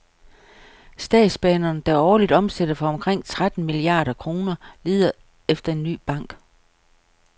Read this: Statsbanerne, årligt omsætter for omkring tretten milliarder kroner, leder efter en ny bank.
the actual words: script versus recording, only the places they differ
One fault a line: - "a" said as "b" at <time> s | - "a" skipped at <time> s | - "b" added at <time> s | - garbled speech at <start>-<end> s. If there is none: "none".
- "der" added at 1.8 s